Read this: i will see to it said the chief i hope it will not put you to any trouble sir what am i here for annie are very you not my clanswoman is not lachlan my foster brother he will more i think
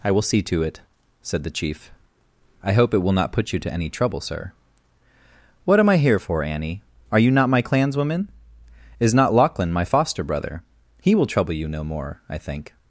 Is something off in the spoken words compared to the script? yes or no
yes